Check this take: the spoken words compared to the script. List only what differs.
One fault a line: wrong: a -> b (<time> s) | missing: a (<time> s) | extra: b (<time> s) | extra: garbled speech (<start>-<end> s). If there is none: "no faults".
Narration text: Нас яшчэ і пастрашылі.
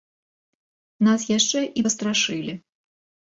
no faults